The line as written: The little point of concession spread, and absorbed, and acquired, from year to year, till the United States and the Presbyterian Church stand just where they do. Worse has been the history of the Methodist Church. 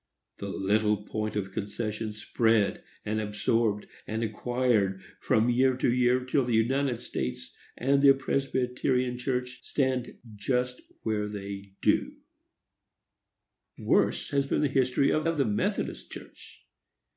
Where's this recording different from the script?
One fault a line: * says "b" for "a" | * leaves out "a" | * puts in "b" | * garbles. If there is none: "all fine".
* puts in "of"